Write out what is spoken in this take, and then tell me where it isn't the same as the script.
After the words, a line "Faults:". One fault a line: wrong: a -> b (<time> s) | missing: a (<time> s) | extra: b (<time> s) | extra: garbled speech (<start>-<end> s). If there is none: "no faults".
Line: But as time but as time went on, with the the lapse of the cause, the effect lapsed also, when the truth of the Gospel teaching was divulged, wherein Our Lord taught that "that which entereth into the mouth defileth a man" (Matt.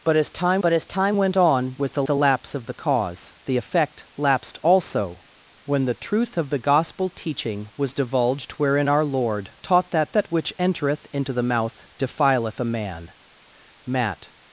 But as time but as time went on, with the the lapse of the cause, the effect lapsed also, when the truth of the Gospel teaching was divulged, wherein Our Lord taught that "that which entereth into the mouth defileth a man" (Matt.
Faults:
no faults